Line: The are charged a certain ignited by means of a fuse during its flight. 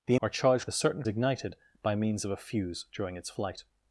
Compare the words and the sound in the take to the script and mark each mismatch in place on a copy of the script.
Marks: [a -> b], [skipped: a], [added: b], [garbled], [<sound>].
The are charged a certain ignited by means of a fuse during its flight.